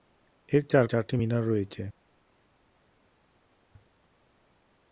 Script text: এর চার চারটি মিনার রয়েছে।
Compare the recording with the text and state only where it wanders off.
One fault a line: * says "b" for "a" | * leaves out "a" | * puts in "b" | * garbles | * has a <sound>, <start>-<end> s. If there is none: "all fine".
all fine